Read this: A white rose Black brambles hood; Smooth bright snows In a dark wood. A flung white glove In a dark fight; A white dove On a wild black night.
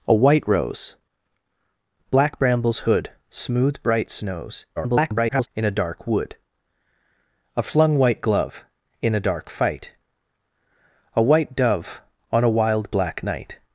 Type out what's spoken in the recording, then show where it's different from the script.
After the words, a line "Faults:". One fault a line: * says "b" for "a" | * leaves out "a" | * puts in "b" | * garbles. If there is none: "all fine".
A white rose Black brambles hood; Smooth bright snows [garbled] In a dark wood. A flung white glove In a dark fight; A white dove On a wild black night.
Faults:
* garbles